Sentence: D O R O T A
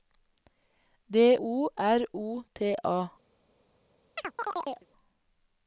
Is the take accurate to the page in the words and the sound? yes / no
no